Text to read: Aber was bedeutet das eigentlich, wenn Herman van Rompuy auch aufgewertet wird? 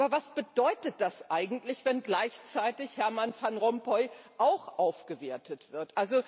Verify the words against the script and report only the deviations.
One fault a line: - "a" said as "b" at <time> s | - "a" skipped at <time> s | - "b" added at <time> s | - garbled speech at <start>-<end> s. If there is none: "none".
- "gleichzeitig" added at 2.0 s